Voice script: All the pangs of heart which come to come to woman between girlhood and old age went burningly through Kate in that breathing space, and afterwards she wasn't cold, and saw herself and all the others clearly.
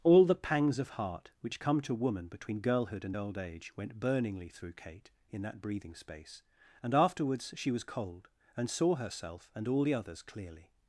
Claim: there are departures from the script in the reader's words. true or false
true